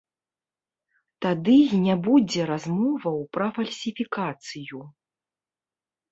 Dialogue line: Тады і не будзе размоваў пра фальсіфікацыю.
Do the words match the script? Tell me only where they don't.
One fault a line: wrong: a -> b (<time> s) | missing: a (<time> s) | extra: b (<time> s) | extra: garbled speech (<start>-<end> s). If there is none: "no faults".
no faults